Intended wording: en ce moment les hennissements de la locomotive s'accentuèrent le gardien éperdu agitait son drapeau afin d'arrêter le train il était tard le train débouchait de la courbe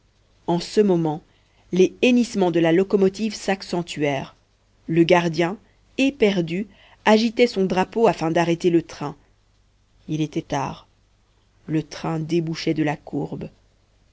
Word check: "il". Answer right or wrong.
right